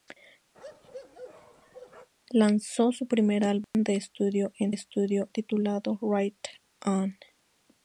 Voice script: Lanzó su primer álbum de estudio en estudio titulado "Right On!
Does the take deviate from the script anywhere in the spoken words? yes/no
no